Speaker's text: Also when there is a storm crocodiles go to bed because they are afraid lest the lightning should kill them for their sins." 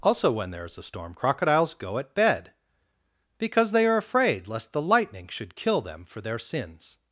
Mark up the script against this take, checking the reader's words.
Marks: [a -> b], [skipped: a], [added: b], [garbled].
Also when there is a storm crocodiles go [to -> at] bed because they are afraid lest the lightning should kill them for their sins."